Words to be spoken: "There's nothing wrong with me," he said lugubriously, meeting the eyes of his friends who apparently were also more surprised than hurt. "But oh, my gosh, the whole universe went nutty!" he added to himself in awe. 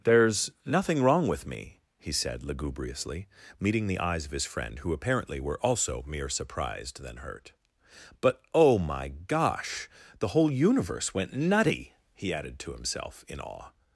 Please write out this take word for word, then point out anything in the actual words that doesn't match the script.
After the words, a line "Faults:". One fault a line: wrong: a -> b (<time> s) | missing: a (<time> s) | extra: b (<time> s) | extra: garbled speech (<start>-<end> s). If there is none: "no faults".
"There's nothing wrong with me," he said lugubriously, meeting the eyes of his friend who apparently were also mere surprised than hurt. "But oh, my gosh, the whole universe went nutty!" he added to himself in awe.
Faults:
wrong: friends -> friend (4.5 s)
wrong: more -> mere (6.1 s)